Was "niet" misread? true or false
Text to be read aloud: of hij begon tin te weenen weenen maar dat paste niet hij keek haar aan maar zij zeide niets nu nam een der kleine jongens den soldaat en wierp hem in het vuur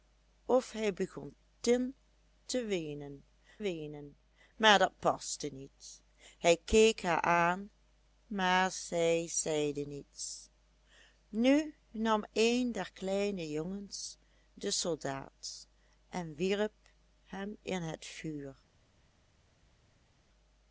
false